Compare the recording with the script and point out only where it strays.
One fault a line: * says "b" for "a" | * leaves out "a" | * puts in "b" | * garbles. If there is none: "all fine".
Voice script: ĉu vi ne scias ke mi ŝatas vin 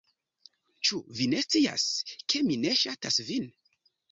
* puts in "ne"